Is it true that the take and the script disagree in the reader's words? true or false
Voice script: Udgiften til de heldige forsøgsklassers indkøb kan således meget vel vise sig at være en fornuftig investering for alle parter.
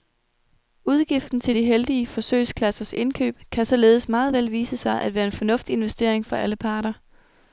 false